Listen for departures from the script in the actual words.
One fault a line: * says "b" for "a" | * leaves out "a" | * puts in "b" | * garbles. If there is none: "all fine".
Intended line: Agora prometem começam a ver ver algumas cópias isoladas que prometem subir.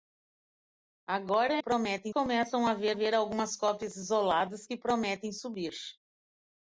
all fine